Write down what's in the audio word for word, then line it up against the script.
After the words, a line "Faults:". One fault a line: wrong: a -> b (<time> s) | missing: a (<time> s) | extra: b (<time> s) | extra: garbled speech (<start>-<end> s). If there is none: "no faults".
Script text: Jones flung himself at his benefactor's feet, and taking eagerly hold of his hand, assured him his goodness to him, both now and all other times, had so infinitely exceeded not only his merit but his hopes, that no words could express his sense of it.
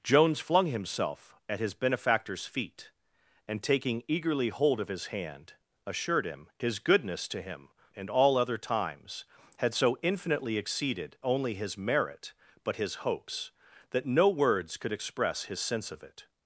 Jones flung himself at his benefactor's feet, and taking eagerly hold of his hand, assured him his goodness to him, and all other times, had so infinitely exceeded only his merit but his hopes, that no words could express his sense of it.
Faults:
missing: both now (7.7 s)
missing: not (11.2 s)